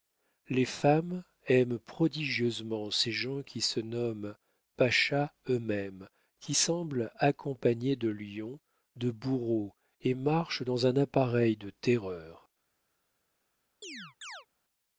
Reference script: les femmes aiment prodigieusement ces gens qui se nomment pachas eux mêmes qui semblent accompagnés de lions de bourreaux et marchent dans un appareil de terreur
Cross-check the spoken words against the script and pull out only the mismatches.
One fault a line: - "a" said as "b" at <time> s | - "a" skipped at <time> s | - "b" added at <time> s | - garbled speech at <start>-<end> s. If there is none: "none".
none